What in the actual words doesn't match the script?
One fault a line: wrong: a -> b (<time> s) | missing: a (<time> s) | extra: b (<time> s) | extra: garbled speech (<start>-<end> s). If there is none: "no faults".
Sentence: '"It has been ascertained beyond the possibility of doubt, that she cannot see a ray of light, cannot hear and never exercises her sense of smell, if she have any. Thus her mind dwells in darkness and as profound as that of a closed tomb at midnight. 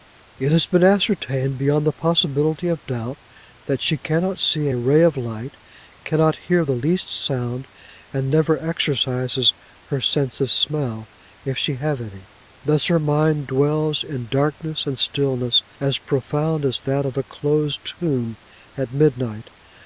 extra: the least sound (6.6 s)
extra: stillness (15.0 s)